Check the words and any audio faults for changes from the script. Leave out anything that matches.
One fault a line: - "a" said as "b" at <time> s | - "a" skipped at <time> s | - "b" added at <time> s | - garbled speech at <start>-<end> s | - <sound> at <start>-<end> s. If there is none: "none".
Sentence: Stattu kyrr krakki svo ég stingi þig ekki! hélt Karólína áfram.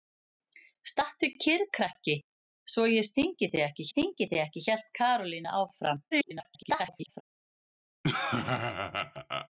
- "stingi þig ekki" added at 3.9 s
- garbled speech at 6.1-7.2 s
- laugh at 8.0-9.5 s